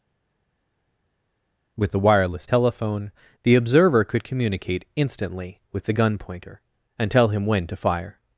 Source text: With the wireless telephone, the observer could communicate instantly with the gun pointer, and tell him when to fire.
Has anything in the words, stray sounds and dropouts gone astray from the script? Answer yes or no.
no